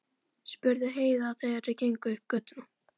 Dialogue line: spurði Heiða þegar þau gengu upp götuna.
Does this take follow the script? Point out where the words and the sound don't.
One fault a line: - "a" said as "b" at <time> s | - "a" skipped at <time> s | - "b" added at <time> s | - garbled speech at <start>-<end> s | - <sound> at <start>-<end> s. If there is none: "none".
none